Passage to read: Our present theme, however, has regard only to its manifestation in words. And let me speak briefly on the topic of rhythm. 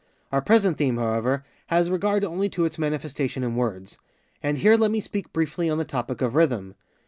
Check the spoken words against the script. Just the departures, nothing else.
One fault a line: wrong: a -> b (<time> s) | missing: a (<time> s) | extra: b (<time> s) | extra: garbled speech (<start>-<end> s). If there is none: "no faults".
extra: here (4.6 s)